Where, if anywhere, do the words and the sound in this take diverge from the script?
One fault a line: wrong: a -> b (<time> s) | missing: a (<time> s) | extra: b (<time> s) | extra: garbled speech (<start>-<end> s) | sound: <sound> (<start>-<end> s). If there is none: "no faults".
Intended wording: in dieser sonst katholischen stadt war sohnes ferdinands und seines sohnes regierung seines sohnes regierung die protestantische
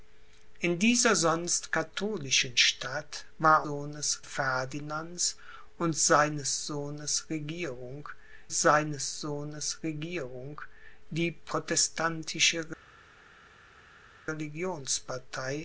no faults